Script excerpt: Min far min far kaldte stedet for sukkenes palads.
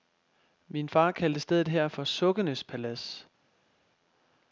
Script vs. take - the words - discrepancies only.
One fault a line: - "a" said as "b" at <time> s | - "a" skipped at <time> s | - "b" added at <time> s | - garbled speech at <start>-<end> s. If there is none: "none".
- "min far" skipped at 1.1 s
- "her" added at 1.7 s